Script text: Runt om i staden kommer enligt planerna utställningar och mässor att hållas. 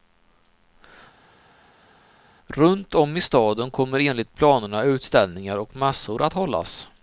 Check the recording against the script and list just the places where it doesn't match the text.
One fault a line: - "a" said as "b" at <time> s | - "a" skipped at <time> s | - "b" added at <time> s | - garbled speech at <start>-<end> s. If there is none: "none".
none